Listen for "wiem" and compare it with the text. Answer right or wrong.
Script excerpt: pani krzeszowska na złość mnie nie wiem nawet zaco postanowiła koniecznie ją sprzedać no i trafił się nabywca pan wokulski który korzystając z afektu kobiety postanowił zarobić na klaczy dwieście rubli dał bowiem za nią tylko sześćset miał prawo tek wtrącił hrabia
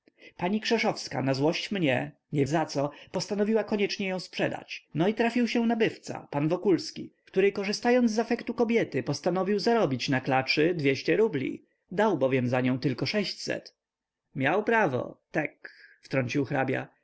wrong